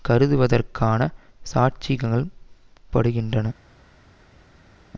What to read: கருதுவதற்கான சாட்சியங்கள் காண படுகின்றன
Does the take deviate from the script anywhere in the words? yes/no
yes